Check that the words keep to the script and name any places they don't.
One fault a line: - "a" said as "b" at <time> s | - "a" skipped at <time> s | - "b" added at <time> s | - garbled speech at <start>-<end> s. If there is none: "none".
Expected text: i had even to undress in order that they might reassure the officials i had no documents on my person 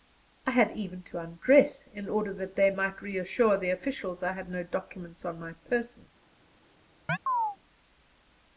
none